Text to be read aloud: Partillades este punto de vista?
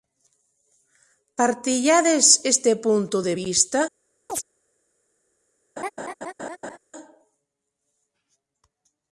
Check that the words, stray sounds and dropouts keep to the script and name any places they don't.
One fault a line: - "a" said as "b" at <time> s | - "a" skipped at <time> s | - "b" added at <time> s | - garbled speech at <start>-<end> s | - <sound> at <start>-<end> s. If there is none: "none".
- chirp at 4.3-4.4 s
- laugh at 5.8-6.8 s